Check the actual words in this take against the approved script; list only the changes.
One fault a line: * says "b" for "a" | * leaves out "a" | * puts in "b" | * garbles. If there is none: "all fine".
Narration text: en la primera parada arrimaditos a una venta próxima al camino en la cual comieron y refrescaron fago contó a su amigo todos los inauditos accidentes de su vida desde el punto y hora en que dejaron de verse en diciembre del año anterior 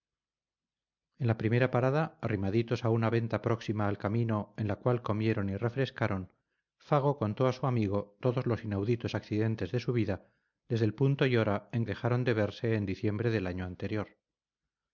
* leaves out "que"